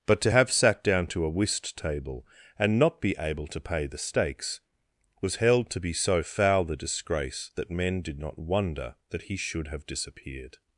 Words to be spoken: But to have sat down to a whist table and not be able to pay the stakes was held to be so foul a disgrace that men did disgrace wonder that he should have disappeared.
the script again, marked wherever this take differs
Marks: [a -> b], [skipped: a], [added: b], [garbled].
But to have sat down to a whist table and not be able to pay the stakes was held to be so foul a disgrace that men did [disgrace -> not] wonder that he should have disappeared.